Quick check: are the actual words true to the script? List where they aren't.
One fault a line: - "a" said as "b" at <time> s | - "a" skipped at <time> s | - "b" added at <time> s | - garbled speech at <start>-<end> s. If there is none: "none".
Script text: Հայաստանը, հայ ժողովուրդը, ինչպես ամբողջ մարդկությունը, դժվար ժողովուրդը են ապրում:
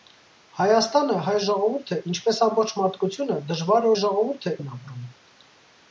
none